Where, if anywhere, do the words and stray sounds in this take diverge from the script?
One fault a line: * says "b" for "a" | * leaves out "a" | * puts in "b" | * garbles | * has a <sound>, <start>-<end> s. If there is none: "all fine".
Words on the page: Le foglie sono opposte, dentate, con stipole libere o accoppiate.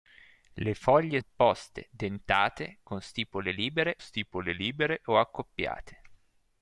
* leaves out "sono"
* puts in "stipole libere"